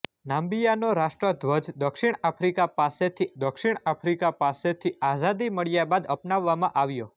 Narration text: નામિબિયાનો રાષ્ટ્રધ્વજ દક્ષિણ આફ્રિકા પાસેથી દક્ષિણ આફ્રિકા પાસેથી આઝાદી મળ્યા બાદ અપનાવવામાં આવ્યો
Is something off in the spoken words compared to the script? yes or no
no